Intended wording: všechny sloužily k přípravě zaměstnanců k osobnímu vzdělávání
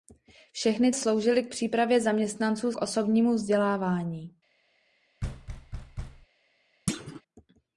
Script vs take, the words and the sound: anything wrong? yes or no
yes